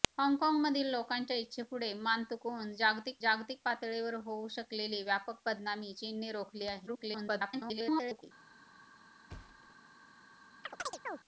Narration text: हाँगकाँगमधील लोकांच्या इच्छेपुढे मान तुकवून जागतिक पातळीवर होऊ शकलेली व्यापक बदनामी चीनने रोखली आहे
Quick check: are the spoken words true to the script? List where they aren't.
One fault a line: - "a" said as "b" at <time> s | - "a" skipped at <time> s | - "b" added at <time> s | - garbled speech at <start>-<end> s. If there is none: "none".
- "जागतिक" added at 3.2 s
- garbled speech at 6.9-8.2 s